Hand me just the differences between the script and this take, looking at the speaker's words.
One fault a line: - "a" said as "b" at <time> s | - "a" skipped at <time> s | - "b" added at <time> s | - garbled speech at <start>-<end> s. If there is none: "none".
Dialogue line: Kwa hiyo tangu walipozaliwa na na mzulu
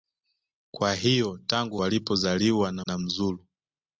none